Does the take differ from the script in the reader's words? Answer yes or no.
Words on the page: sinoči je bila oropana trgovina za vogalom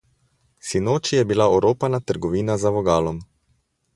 no